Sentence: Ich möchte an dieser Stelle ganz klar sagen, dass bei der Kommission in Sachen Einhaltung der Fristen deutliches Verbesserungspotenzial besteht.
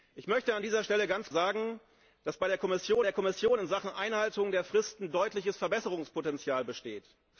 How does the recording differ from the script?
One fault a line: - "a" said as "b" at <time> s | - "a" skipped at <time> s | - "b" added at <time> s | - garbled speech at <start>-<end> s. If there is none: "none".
- "klar" skipped at 1.3 s
- "der Kommission" added at 3.0 s